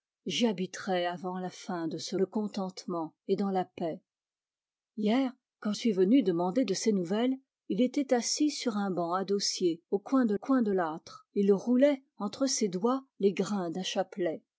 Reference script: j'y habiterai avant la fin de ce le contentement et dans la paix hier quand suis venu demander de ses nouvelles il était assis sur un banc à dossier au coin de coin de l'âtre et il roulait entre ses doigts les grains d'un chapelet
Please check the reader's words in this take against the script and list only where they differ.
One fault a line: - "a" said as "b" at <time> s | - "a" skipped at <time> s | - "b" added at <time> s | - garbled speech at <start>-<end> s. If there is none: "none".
none